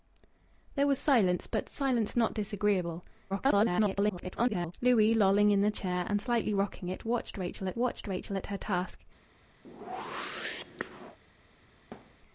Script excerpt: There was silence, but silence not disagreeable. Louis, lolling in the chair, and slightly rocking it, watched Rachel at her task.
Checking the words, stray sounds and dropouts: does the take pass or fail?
fail